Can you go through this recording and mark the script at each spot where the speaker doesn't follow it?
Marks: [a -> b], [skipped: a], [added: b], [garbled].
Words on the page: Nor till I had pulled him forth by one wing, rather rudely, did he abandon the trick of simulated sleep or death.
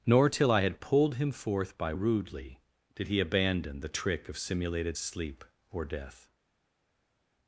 Nor till I had pulled him forth by [skipped: one wing, rather] rudely, did he abandon the trick of simulated sleep or death.